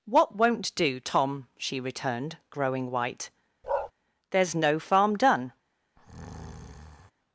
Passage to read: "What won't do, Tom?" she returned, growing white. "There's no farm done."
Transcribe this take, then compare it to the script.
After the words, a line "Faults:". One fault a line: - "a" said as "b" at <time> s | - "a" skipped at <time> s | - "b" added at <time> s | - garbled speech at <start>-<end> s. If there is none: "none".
"What won't do, Tom?" she returned, growing white. "There's no farm done."
Faults:
none